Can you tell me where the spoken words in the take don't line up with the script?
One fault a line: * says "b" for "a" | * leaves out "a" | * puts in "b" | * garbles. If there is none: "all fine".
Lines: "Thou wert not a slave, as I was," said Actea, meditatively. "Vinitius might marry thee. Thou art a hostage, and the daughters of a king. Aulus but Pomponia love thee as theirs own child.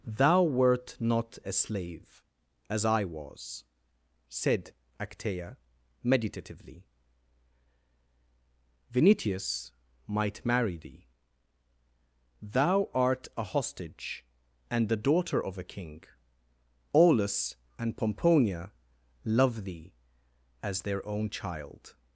* says "daughter" for "daughters"
* says "and" for "but"
* says "their" for "theirs"